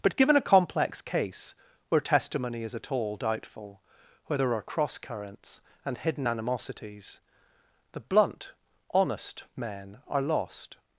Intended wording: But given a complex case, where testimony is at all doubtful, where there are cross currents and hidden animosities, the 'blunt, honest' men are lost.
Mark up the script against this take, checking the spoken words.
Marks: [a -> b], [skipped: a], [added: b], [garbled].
But given a complex case, where testimony is at all doubtful, where there are cross currents and hidden animosities, the 'blunt, honest' men are lost.